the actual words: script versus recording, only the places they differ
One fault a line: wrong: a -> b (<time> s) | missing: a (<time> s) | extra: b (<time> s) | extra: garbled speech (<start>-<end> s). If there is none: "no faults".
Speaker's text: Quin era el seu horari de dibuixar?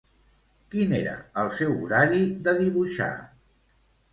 no faults